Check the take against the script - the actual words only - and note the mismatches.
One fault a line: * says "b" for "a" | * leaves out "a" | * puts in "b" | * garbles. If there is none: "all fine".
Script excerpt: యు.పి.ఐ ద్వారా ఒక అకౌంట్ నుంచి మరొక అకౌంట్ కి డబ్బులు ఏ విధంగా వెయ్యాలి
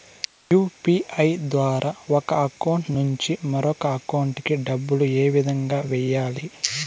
all fine